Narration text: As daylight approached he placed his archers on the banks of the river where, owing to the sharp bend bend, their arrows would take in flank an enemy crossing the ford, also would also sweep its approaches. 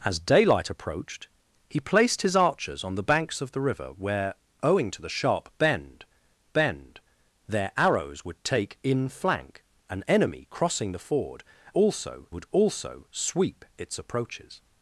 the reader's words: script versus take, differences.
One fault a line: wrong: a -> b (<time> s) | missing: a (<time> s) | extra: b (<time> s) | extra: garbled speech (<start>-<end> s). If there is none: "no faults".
no faults